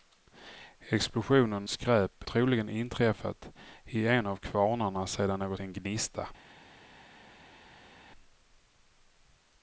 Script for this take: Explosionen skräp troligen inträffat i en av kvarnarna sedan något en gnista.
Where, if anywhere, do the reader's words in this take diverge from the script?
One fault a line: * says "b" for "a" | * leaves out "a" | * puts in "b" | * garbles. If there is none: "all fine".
all fine